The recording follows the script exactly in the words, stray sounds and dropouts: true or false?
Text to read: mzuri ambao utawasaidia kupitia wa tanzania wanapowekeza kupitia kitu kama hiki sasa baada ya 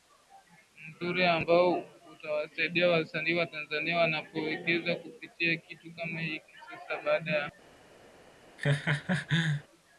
false